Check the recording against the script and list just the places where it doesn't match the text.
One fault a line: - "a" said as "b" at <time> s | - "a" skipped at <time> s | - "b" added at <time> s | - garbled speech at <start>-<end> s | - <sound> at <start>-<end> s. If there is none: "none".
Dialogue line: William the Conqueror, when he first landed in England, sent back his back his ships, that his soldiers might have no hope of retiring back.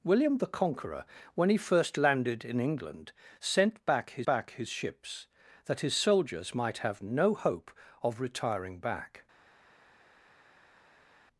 none